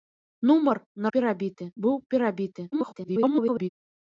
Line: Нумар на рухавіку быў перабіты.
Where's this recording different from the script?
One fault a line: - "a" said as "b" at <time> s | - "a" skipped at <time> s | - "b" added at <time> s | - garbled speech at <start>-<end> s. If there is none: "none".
- "рухавіку" said as "перабіты" at 1.2 s
- garbled speech at 2.7-3.7 s